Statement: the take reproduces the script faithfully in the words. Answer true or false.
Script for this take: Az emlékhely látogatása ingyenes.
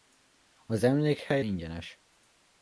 false